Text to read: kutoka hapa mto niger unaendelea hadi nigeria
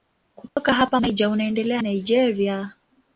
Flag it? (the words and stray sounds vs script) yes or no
yes